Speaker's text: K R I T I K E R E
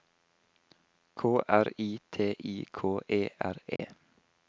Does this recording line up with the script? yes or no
yes